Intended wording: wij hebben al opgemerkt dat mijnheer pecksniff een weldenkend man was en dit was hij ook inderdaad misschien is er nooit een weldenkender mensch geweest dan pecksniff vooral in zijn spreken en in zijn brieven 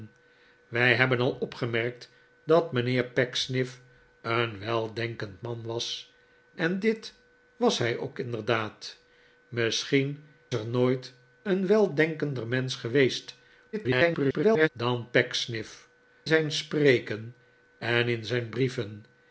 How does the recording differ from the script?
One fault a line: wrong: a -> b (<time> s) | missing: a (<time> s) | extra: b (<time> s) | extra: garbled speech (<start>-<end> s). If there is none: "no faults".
missing: is (10.2 s)
extra: garbled speech (13.7-14.7 s)
missing: vooral in (15.9 s)